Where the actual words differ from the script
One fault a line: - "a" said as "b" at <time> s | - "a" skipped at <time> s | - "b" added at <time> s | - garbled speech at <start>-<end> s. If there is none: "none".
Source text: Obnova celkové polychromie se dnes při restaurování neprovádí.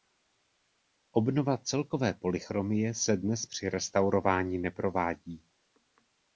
none